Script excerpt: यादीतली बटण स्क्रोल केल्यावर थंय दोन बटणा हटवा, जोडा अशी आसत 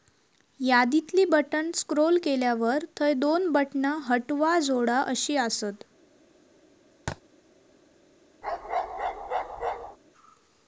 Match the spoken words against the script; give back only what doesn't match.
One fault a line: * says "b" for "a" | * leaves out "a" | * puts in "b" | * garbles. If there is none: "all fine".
all fine